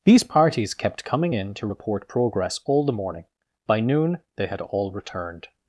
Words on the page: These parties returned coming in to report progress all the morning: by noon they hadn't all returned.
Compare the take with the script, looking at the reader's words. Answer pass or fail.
fail